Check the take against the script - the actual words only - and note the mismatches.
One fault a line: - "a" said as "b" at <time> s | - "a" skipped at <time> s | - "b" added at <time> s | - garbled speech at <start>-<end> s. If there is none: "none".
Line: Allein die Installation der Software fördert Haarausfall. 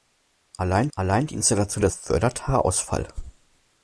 - "allein" added at 1.0 s
- "Software" skipped at 1.9 s